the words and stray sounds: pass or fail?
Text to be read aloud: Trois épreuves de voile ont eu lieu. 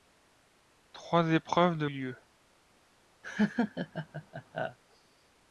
fail